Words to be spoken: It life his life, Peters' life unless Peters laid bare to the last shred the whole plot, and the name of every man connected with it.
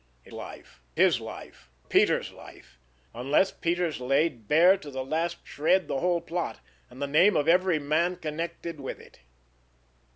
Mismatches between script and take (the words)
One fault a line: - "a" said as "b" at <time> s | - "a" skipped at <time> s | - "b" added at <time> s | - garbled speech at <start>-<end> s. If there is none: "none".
none